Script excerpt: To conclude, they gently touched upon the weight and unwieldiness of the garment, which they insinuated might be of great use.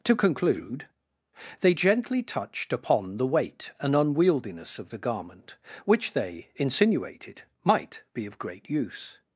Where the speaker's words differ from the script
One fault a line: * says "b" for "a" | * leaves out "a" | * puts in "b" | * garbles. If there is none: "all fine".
all fine